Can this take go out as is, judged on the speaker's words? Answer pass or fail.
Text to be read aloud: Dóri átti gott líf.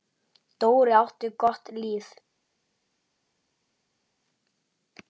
pass